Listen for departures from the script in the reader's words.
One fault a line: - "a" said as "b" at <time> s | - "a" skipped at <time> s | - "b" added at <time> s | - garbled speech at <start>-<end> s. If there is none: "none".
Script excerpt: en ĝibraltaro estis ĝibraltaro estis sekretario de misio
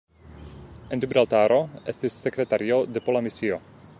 - "ĝibraltaro estis" skipped at 2.2 s
- "pola" added at 3.1 s